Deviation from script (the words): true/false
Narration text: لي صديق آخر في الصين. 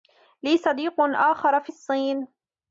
false